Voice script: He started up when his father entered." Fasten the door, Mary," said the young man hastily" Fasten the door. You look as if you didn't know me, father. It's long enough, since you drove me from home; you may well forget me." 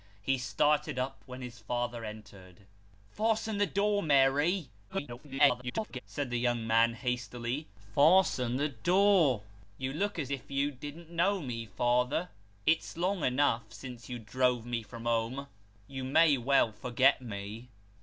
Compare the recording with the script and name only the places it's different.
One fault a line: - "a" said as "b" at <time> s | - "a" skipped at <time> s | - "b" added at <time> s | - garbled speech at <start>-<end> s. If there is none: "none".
- garbled speech at 4.9-6.0 s